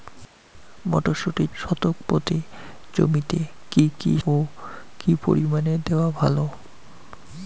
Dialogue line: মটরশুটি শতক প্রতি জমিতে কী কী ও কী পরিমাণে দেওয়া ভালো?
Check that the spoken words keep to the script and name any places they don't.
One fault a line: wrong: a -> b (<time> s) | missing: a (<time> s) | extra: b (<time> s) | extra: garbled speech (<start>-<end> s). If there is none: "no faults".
no faults